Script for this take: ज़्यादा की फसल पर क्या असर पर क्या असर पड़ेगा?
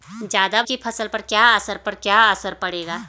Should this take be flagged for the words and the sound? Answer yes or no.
no